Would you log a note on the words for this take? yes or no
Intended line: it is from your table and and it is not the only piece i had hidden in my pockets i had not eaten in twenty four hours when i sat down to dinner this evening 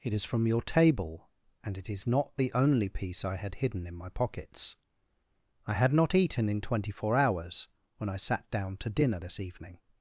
yes